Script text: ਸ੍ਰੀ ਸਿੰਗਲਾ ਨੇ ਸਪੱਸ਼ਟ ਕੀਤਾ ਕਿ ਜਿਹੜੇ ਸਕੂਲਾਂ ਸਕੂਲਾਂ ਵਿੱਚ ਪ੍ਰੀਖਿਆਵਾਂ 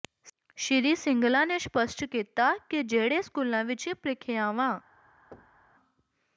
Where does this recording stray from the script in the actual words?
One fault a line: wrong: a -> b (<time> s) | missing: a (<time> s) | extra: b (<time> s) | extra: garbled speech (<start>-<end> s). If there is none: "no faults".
missing: ਸਕੂਲਾਂ (3.6 s)